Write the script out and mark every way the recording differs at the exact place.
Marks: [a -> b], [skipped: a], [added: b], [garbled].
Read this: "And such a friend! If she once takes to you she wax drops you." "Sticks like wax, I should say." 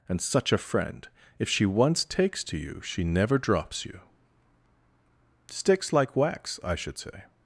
"And such a friend! If she once takes to you she [wax -> never] drops you." "Sticks like wax, I should say."